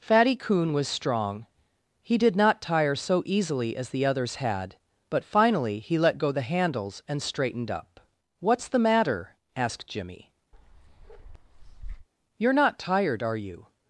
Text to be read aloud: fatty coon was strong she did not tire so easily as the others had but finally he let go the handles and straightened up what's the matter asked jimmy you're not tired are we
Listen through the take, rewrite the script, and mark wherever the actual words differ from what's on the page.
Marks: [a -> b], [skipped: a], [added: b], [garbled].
fatty coon was strong [she -> he] did not tire so easily as the others had but finally he let go the handles and straightened up what's the matter asked jimmy you're not tired are [we -> you]